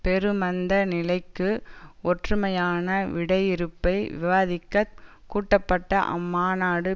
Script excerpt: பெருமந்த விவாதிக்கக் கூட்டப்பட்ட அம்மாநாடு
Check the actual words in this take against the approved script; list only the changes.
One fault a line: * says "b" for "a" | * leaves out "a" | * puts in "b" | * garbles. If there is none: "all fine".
* puts in "நிலைக்கு ஒற்றுமையான விடையிறுப்பை"